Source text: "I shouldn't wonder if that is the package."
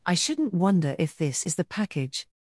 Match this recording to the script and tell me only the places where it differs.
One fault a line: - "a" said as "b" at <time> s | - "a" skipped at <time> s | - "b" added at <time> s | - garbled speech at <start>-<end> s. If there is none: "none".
- "that" said as "this" at 1.1 s